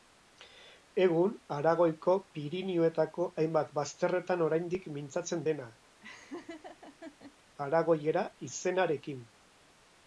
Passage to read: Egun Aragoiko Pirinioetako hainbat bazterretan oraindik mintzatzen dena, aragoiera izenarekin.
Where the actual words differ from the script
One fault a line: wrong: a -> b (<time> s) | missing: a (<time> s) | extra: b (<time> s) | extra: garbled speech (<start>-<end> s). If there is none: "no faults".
no faults